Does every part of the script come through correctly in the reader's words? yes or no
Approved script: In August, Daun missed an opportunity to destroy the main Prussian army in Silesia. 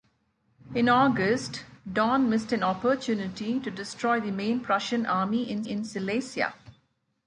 no